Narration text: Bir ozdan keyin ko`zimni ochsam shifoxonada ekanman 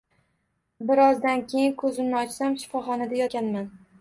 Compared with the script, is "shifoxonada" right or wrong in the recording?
right